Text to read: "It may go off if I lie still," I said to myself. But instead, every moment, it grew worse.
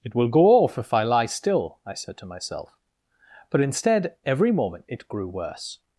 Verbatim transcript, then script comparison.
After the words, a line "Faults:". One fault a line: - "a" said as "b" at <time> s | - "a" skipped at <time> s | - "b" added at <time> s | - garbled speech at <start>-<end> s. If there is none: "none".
"It will go off if I lie still," I said to myself. But instead, every moment, it grew worse.
Faults:
- "may" said as "will" at 0.1 s